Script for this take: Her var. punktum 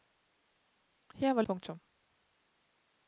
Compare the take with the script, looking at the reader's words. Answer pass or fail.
pass